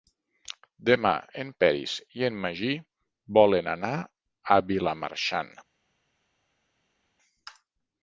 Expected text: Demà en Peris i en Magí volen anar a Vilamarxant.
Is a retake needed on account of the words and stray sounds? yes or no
no